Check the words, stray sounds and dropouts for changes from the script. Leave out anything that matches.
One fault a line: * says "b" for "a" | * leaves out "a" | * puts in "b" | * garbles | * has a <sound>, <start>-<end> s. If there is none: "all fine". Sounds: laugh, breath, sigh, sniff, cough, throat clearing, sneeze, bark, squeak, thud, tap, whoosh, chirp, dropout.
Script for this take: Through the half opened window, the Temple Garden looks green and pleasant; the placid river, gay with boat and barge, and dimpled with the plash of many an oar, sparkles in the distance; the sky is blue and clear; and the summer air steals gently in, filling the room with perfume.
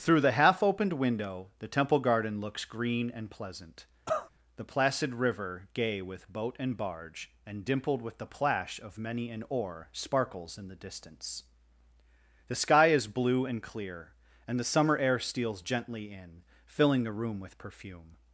* has a cough, 4.1-4.3 s